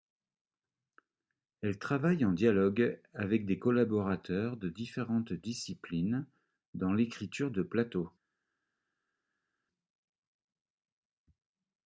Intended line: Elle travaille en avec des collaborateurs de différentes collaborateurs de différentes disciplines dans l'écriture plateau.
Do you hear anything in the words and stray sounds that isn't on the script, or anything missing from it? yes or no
yes